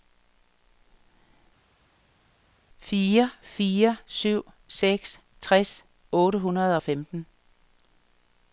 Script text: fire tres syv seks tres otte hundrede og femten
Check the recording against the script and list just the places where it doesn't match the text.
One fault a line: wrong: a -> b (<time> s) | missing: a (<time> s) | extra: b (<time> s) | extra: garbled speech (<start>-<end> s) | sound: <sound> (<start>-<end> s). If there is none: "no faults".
wrong: tres -> fire (3.4 s)